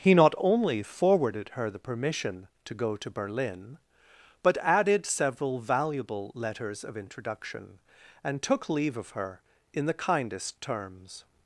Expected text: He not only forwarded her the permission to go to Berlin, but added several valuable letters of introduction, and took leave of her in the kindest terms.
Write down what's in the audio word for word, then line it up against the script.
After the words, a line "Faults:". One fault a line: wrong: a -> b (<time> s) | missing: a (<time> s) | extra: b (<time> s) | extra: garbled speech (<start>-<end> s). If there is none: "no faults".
He not only forwarded her the permission to go to Berlin, but added several valuable letters of introduction, and took leave of her in the kindest terms.
Faults:
no faults